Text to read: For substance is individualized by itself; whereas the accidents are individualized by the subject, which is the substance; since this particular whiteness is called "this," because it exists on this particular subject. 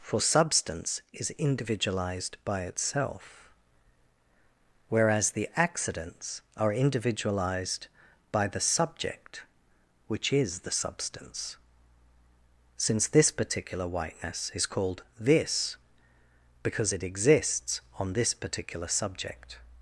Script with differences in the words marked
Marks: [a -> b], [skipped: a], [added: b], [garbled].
For substance is individualized by itself; whereas the accidents are individualized by the subject, which is the substance; since this particular whiteness is called "this," because it exists on this particular subject.